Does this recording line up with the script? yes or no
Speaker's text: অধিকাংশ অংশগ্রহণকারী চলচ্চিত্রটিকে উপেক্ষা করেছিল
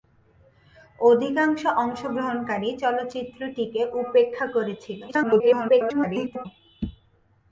no